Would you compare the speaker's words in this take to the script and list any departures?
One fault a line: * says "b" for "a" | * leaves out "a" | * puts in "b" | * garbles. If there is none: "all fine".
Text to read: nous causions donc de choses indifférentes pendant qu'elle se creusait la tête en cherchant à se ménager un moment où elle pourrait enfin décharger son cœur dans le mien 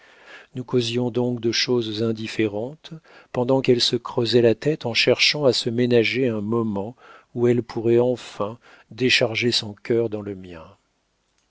all fine